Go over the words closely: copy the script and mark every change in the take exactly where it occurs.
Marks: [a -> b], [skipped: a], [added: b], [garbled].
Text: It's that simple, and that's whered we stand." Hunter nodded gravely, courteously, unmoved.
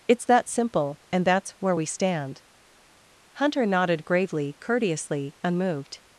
It's that simple, and that's [whered -> where] we stand." Hunter nodded gravely, courteously, unmoved.